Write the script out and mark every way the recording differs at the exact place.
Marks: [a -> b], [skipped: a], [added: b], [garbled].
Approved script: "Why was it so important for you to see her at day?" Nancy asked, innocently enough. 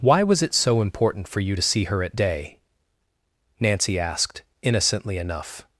"Why was it so important for you to see her at day?" Nancy asked, innocently enough.